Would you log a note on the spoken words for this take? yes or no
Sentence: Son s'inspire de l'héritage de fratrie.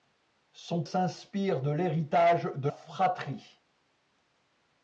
no